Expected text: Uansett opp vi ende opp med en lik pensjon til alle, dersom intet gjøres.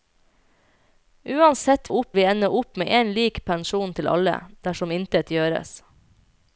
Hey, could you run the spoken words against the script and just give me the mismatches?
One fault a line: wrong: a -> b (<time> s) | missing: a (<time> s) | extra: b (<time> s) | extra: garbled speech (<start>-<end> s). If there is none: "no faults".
no faults